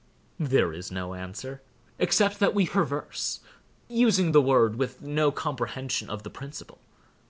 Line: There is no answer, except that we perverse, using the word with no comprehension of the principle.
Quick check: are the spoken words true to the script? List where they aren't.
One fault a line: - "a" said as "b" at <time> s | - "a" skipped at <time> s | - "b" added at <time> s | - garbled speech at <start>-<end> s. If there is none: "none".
none